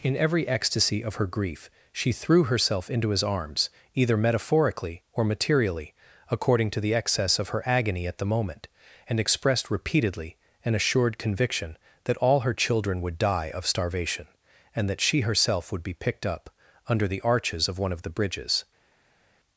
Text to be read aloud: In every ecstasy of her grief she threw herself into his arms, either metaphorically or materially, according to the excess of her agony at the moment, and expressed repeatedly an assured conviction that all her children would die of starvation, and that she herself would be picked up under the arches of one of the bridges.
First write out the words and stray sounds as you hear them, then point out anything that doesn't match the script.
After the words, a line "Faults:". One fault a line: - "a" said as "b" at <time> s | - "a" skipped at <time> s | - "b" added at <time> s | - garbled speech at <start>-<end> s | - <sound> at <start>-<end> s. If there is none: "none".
In every ecstasy of her grief she threw herself into his arms, either metaphorically or materially, according to the excess of her agony at the moment, and expressed repeatedly an assured conviction that all her children would die of starvation, and that she herself would be picked up under the arches of one of the bridges.
Faults:
none